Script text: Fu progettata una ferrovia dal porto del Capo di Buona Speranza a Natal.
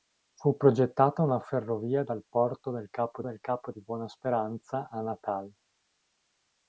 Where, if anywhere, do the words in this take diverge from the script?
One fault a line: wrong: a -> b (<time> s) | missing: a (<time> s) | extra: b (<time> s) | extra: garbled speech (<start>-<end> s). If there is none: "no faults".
extra: del Capo (3.2 s)